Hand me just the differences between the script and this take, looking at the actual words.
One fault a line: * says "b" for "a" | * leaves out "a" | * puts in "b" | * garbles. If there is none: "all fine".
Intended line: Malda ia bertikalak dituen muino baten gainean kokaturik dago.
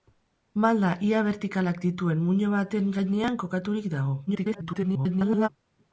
* garbles